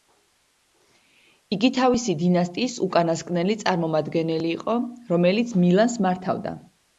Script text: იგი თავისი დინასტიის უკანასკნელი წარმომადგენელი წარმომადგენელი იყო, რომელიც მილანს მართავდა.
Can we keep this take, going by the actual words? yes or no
no